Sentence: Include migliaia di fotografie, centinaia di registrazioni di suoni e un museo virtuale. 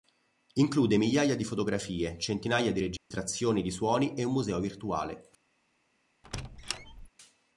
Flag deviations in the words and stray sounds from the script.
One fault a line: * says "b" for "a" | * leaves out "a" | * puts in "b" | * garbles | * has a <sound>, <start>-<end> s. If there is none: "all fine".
* has a dropout, 3.0-3.1 s
* has a squeak, 6.2-7.1 s